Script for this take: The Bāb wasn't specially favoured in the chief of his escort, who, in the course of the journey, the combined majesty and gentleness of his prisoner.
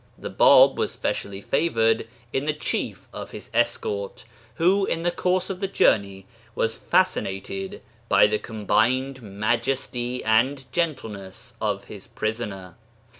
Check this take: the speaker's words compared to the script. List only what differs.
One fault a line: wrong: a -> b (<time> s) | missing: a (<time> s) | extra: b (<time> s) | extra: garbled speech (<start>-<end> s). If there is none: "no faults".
wrong: wasn't -> was (0.8 s)
extra: was fascinated by (6.5 s)